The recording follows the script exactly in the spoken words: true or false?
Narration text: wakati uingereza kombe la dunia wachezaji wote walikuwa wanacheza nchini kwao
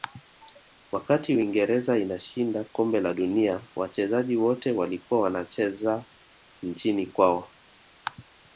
false